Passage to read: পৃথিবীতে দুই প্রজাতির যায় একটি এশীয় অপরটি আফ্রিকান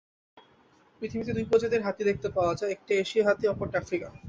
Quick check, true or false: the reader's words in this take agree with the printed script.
false